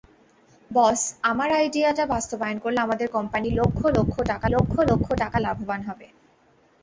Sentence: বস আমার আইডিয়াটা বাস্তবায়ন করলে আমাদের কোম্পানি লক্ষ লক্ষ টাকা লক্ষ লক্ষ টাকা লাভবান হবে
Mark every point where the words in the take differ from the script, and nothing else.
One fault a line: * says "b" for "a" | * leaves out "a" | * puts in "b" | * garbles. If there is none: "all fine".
all fine